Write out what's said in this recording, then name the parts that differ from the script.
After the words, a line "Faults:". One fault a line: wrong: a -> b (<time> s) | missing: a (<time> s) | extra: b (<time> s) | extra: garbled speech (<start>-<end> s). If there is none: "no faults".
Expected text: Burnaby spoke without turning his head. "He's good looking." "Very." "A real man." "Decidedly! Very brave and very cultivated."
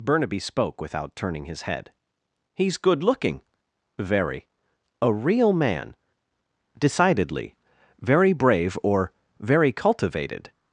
Burnaby spoke without turning his head. "He's good looking." "Very." "A real man." "Decidedly! Very brave or very cultivated."
Faults:
wrong: and -> or (8.8 s)